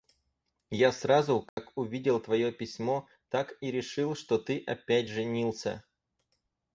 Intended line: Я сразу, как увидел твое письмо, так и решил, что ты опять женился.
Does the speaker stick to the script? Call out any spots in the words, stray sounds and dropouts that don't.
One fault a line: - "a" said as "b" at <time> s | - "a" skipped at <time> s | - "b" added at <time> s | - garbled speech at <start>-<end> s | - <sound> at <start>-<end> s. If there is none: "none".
- dropout at 1.5-1.6 s